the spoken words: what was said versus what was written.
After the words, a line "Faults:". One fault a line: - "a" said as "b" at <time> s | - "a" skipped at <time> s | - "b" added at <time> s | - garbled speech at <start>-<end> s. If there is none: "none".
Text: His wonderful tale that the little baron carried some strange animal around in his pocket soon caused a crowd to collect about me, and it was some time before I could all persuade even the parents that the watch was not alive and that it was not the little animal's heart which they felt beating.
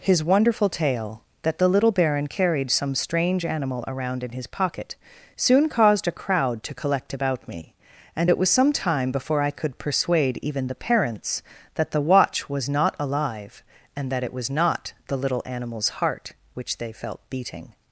His wonderful tale that the little baron carried some strange animal around in his pocket soon caused a crowd to collect about me, and it was some time before I could persuade even the parents that the watch was not alive and that it was not the little animal's heart which they felt beating.
Faults:
- "all" skipped at 9.8 s